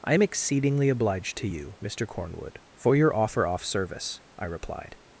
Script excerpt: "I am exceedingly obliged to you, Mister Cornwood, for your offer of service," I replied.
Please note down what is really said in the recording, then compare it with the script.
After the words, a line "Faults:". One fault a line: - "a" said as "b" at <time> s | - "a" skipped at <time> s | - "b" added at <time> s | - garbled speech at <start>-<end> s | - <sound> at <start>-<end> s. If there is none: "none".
"I am exceedingly obliged to you, Mister Cornwood, for your offer off service," I replied.
Faults:
- "of" said as "off" at 3.5 s